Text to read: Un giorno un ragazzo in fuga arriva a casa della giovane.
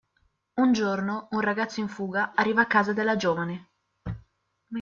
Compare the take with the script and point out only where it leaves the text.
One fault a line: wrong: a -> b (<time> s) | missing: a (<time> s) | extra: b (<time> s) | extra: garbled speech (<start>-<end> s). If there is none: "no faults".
no faults